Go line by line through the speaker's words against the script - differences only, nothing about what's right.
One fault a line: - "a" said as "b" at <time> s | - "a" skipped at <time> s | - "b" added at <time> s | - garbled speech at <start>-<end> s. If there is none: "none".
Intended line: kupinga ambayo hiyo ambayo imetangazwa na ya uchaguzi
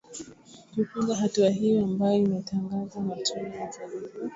- "ambayo" said as "hatua" at 1.1 s
- "tume" added at 3.2 s